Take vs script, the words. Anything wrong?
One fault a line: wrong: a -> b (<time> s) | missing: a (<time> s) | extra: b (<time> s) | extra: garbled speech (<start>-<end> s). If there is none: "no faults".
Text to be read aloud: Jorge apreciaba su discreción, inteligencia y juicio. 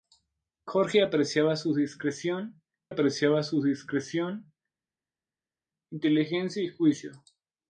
extra: apreciaba su discreción (2.9 s)